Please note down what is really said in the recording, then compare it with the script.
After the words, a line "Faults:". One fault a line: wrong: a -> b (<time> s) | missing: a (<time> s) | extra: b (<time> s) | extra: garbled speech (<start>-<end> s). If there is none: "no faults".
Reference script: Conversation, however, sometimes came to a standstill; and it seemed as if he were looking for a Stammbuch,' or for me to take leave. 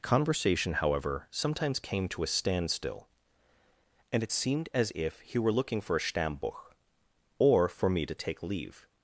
Conversation, however, sometimes came to a standstill; and it seemed as if he were looking for a Stammbuch,' or for me to take leave.
Faults:
no faults